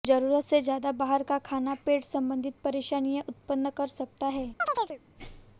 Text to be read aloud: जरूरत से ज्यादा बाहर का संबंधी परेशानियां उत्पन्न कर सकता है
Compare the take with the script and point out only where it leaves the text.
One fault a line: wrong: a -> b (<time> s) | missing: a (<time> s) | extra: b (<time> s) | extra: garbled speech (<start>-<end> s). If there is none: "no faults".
extra: खाना पेट (1.4 s)